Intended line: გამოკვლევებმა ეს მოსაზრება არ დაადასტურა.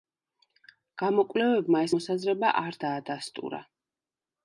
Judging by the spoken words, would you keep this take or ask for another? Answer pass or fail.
pass